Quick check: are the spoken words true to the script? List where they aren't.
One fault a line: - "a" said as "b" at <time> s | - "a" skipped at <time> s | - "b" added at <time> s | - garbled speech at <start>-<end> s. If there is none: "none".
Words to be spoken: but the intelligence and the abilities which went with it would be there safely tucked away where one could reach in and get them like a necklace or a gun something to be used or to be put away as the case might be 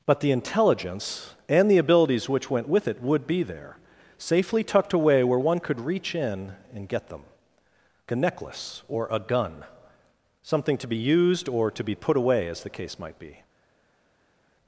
- "like" skipped at 7.2 s